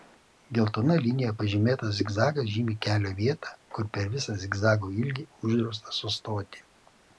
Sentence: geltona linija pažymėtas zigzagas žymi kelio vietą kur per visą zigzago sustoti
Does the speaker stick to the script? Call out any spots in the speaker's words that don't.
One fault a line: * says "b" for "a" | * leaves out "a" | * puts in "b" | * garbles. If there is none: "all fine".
* puts in "ilgį uždrausta"